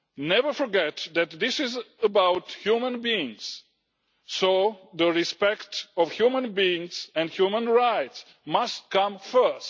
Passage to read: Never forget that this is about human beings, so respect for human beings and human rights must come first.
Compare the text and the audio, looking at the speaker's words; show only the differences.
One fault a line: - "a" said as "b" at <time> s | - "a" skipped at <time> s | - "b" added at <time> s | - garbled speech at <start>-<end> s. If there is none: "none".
none